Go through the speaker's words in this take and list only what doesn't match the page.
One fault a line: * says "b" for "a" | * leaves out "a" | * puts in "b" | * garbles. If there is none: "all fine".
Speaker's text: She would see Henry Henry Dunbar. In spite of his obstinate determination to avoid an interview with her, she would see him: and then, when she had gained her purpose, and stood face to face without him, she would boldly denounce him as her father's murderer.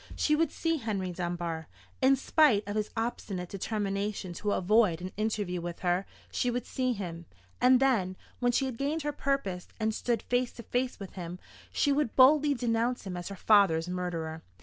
* leaves out "Henry"
* says "with" for "without"